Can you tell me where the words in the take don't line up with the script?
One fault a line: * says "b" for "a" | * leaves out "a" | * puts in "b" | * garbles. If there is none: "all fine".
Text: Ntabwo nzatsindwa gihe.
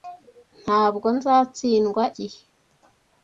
all fine